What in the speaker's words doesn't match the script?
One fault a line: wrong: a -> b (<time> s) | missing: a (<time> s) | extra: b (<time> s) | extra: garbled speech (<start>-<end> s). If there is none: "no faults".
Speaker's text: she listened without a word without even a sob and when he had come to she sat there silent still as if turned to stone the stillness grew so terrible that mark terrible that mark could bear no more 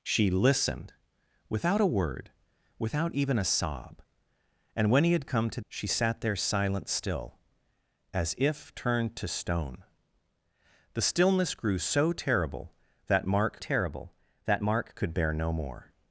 no faults